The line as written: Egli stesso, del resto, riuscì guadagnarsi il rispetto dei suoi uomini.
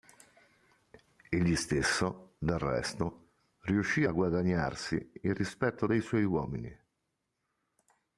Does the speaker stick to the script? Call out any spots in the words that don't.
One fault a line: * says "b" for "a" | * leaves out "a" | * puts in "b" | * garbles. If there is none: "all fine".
* puts in "a"